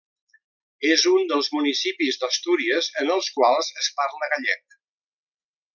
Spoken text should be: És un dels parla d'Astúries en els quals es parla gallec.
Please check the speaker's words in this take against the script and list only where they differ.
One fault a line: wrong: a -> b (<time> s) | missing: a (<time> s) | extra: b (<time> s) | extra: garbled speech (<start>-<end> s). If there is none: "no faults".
wrong: parla -> municipis (1.6 s)